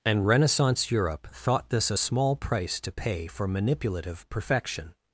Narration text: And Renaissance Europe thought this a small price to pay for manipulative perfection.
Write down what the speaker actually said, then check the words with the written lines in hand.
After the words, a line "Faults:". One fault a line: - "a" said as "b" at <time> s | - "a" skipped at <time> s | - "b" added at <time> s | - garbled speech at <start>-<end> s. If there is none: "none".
And Renaissance Europe thought this a small price to pay for manipulative perfection.
Faults:
none